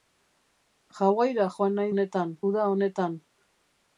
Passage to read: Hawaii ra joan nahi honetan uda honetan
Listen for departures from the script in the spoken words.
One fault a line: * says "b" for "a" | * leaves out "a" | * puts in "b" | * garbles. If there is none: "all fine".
all fine